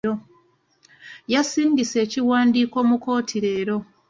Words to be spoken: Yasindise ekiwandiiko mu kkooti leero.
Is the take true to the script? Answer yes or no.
yes